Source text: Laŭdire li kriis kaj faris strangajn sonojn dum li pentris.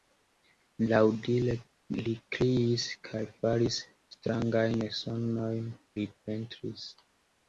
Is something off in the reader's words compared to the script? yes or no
yes